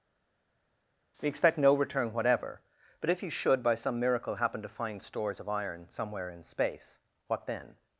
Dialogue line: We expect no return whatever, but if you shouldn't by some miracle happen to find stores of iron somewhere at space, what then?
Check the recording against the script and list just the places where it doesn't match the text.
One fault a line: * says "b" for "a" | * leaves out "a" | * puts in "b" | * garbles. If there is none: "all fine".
* says "should" for "shouldn't"
* says "in" for "at"